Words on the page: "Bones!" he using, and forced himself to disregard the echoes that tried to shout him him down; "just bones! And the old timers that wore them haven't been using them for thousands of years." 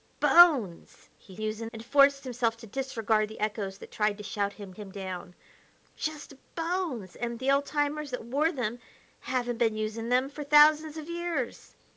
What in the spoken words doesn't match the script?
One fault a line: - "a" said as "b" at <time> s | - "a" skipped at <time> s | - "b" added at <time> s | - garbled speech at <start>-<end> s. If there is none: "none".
none